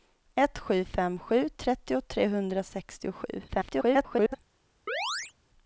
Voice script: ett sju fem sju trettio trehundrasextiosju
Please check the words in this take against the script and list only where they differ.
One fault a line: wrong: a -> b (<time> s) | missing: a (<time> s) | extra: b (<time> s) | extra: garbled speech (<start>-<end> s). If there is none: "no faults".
extra: garbled speech (3.5-4.4 s)